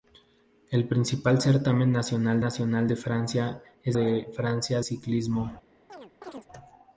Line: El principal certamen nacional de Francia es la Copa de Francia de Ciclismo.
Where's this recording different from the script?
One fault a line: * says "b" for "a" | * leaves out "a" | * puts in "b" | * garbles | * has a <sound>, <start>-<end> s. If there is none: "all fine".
* puts in "nacional"
* leaves out "la Copa"
* leaves out "de"
* has a chirp, 5.9-6.5 s